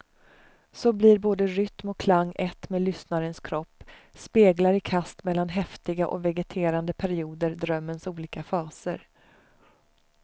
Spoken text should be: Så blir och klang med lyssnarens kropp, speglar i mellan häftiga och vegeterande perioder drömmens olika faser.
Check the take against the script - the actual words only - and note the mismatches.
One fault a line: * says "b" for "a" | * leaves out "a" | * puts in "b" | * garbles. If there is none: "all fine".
* puts in "både rytm"
* puts in "ett"
* puts in "kast"